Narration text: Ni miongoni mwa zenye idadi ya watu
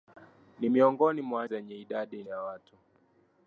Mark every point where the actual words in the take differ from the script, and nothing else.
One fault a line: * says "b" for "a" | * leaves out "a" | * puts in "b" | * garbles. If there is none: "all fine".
all fine